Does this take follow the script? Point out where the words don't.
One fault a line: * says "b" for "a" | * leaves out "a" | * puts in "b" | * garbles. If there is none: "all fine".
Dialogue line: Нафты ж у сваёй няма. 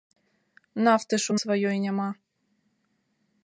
all fine